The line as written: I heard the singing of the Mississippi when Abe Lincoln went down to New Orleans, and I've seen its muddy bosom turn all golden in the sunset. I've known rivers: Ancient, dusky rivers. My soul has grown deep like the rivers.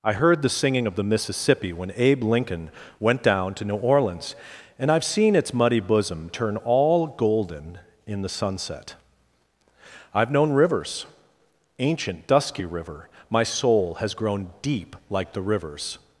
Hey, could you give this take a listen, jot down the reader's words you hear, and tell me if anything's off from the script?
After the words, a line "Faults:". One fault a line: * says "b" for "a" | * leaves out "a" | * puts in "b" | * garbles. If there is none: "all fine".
I heard the singing of the Mississippi when Abe Lincoln went down to New Orleans, and I've seen its muddy bosom turn all golden in the sunset. I've known rivers: Ancient, dusky river. My soul has grown deep like the rivers.
Faults:
* says "river" for "rivers"